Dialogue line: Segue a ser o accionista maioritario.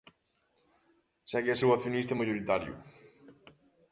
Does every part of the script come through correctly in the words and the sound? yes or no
no